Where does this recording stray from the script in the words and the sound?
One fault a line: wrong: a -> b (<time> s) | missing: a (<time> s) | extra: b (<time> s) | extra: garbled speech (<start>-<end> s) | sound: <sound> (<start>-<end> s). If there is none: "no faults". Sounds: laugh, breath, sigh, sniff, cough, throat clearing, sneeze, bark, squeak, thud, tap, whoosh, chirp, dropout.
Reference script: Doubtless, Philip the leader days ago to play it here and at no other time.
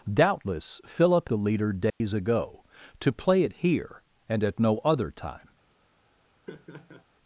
sound: dropout (1.9-2.0 s)
sound: laugh (6.5-7.1 s)